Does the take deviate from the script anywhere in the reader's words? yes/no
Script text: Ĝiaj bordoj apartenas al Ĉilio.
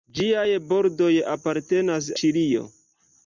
yes